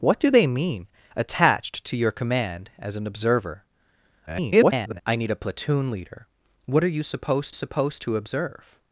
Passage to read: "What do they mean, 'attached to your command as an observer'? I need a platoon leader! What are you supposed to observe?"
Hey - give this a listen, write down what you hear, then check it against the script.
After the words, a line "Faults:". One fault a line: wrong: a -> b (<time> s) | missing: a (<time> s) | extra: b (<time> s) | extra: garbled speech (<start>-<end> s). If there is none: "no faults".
"What do they mean, 'attached to your command as an observer'? [garbled] I need a platoon leader! What are you supposed supposed to observe?"
Faults:
extra: garbled speech (4.3-5.0 s)
extra: supposed (7.5 s)